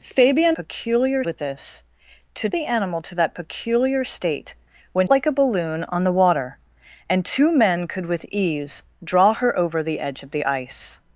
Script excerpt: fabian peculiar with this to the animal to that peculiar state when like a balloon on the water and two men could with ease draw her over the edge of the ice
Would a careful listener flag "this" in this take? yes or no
no